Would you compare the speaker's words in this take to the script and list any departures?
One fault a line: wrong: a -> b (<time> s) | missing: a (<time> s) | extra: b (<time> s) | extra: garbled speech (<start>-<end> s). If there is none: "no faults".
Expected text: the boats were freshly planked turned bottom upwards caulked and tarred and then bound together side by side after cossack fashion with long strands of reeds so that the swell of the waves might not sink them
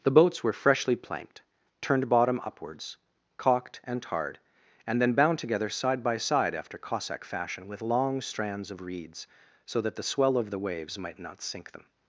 no faults